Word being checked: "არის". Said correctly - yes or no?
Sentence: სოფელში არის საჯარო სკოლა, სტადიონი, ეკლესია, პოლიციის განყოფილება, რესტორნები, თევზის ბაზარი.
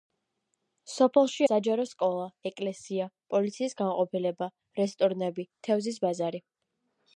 no